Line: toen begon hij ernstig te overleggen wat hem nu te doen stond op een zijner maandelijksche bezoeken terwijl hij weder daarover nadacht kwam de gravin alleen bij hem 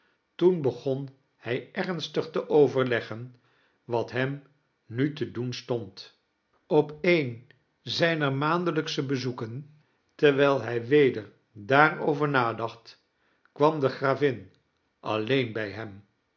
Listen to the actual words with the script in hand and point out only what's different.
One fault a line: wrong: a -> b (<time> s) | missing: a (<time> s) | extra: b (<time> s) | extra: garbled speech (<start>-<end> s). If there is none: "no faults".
no faults